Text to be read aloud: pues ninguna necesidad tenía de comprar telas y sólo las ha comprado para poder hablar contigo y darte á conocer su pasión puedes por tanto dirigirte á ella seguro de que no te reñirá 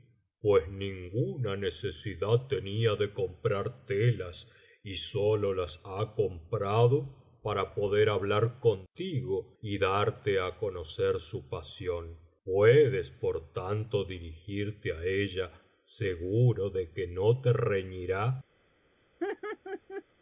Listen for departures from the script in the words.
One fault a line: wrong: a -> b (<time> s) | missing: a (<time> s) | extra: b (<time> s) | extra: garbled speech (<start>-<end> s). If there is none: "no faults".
no faults